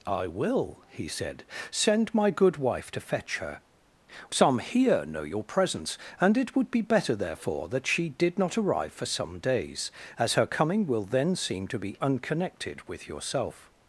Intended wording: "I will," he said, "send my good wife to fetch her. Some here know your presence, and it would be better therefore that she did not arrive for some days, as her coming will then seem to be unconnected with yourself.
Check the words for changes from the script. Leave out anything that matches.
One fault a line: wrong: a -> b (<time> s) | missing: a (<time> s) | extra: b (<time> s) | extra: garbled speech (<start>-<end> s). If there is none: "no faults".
no faults